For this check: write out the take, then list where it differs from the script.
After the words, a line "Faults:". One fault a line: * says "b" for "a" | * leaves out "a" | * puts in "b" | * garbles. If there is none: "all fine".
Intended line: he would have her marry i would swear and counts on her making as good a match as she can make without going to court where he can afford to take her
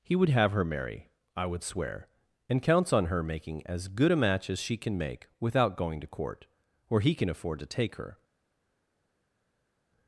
he would have her marry i would swear and counts on her making as good a match as she can make without going to court where he can afford to take her
Faults:
all fine